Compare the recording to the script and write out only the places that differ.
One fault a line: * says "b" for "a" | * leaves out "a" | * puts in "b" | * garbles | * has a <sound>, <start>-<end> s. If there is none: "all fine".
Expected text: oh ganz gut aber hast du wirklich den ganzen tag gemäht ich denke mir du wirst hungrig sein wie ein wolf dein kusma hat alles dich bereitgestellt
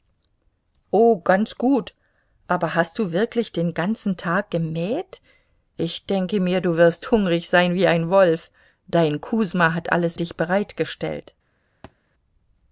* has a thud, 11.8-12.0 s